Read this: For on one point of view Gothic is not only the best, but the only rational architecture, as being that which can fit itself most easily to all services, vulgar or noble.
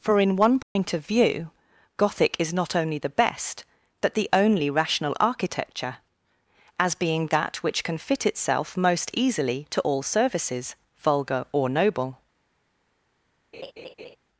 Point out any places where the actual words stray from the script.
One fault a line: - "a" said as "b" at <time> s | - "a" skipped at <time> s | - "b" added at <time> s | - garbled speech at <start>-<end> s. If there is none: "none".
- "on" said as "in" at 0.2 s